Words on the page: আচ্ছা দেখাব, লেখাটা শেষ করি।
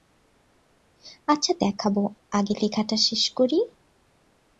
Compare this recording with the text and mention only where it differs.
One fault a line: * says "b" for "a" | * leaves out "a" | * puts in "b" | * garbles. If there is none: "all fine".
* puts in "আগে"